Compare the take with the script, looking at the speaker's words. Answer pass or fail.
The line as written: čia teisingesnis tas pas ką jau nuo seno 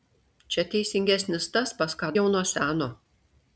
pass